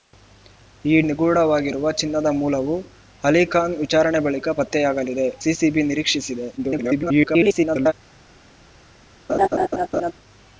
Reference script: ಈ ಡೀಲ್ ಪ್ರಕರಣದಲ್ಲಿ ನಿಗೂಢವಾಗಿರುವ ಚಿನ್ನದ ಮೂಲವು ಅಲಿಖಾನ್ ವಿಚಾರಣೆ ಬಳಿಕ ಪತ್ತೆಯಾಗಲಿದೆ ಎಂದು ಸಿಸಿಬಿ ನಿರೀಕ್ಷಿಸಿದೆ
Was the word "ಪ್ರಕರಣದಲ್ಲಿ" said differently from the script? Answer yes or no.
yes